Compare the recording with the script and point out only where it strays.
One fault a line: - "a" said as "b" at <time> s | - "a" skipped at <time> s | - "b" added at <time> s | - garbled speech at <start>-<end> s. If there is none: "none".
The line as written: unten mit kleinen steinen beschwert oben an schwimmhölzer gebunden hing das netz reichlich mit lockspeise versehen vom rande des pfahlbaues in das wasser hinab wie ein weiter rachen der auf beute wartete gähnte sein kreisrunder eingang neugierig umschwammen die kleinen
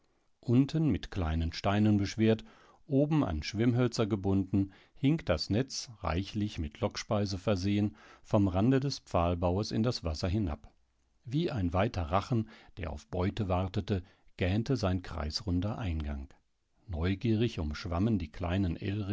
none